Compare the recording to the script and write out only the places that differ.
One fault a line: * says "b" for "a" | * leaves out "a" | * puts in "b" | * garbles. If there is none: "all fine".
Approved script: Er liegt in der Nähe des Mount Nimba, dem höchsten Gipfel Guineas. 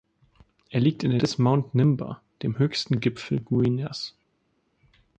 * leaves out "Nähe"